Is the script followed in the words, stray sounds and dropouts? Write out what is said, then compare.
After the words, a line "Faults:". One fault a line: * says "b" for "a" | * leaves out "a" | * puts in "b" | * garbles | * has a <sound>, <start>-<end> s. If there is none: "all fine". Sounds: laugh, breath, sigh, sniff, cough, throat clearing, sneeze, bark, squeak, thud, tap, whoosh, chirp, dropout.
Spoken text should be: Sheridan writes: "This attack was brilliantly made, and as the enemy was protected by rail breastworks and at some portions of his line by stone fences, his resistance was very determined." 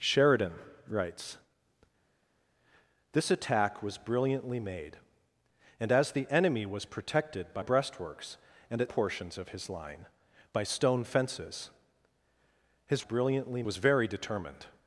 Sheridan writes: "This attack was brilliantly made, and as the enemy was protected by breastworks and at portions of his line by stone fences, his brilliantly was very determined."
Faults:
* leaves out "rail"
* leaves out "some"
* says "brilliantly" for "resistance"